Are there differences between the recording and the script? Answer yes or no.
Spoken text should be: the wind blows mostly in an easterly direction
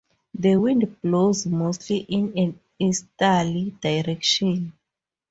no